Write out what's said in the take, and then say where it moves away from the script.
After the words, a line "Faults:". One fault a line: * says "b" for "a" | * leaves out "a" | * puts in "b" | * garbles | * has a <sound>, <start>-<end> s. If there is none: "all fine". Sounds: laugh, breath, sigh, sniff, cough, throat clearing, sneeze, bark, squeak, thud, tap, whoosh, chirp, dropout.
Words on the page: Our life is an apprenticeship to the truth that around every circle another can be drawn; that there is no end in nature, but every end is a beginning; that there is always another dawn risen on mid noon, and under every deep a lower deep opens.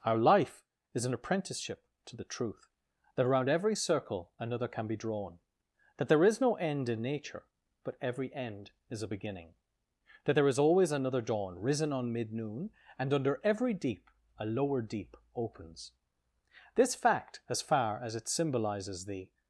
Our life is an apprenticeship to the truth that around every circle another can be drawn; that there is no end in nature, but every end is a beginning; that there is always another dawn risen on mid noon, and under every deep a lower deep opens. This fact, as far as it symbolizes the
Faults:
* puts in "This fact as far as it symbolizes the"